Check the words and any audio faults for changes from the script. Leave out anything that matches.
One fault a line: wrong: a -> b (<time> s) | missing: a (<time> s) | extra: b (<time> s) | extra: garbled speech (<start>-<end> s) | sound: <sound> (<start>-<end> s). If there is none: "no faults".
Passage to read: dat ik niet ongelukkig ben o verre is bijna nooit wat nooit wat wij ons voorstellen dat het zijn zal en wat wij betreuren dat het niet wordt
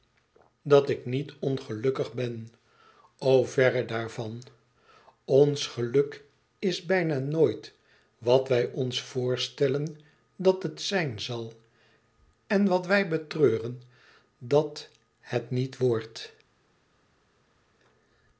extra: daarvan ons geluk (3.9 s)
missing: nooit wat (8.5 s)